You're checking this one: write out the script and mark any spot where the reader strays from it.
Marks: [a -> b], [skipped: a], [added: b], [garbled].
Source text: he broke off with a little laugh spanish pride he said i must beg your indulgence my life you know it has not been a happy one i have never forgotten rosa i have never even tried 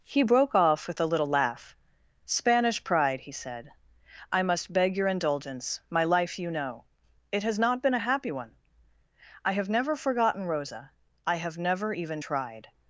he broke off with a little laugh spanish pride he said i must beg your indulgence my life you know it has not been a happy one i have never forgotten rosa i have never even tried